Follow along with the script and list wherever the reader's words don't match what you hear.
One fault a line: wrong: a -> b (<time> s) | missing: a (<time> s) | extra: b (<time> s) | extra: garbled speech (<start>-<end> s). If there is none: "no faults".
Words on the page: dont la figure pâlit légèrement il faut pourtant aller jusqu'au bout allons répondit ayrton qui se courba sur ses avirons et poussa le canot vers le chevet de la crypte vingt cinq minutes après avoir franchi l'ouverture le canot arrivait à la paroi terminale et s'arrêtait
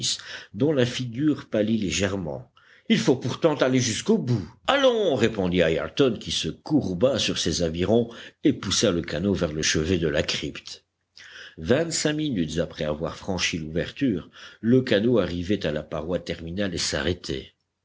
no faults